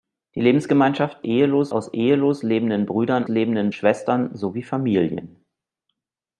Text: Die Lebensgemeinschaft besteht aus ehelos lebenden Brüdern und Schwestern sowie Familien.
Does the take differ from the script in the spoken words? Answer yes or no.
yes